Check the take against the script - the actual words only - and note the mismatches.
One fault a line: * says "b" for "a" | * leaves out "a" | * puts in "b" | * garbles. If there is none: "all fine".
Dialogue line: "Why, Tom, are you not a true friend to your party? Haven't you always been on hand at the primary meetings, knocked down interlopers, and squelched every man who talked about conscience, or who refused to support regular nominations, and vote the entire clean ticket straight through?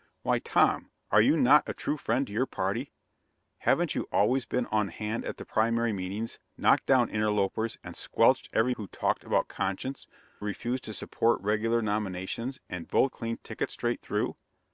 * leaves out "man"
* leaves out "or who"
* leaves out "the entire"